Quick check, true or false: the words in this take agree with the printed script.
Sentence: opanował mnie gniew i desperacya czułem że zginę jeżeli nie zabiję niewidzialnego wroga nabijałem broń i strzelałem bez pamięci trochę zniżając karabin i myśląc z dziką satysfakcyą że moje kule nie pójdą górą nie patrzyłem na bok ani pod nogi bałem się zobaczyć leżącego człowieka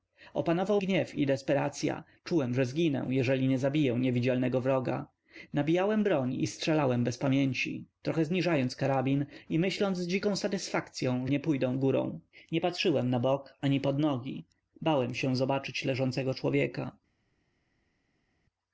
false